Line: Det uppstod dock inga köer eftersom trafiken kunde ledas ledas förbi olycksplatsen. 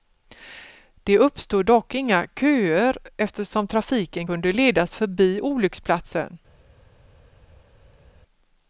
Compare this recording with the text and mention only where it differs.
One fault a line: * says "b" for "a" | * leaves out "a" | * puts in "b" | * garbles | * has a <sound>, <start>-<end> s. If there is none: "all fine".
* leaves out "ledas"